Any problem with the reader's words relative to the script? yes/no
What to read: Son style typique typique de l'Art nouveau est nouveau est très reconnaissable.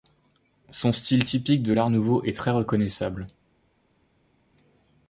yes